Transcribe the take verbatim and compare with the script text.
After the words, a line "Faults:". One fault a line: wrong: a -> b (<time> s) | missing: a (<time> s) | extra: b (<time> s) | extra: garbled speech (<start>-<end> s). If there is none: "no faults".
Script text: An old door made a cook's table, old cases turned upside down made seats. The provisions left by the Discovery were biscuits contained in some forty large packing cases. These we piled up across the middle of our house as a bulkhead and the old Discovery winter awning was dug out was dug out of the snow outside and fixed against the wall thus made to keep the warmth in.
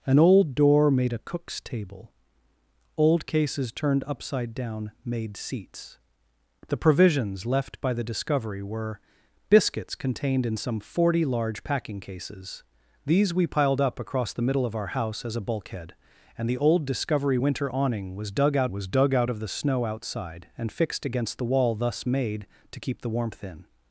An old door made a cook's table, old cases turned upside down made seats. The provisions left by the Discovery were biscuits contained in some forty large packing cases. These we piled up across the middle of our house as a bulkhead and the old Discovery winter awning was dug out was dug out of the snow outside and fixed against the wall thus made to keep the warmth in.
Faults:
no faults